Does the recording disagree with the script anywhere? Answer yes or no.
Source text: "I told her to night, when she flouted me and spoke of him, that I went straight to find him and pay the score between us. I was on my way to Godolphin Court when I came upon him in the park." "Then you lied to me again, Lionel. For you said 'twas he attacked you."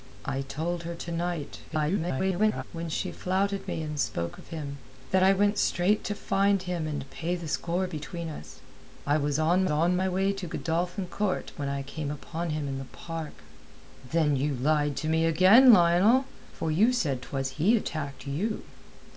yes